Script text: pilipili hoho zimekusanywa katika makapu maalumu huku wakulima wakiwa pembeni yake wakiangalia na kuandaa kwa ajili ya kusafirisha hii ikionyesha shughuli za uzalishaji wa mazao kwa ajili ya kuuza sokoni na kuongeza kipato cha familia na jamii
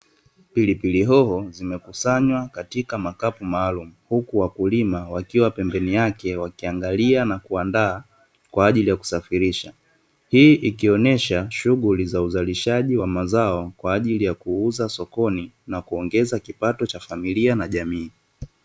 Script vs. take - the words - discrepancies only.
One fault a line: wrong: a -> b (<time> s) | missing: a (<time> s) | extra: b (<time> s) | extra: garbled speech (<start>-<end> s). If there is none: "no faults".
no faults